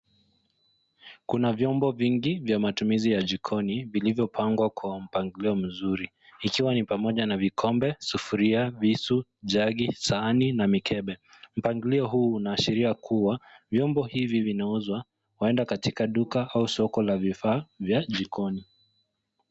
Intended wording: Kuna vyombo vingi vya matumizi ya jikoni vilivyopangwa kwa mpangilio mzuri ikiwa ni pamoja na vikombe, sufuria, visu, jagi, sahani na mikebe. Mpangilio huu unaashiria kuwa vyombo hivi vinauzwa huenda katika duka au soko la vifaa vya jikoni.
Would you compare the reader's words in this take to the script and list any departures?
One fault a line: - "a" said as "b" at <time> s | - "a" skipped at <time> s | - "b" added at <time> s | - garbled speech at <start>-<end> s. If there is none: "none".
none